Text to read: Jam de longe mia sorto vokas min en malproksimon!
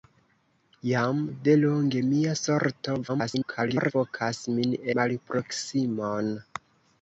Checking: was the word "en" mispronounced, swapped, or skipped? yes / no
yes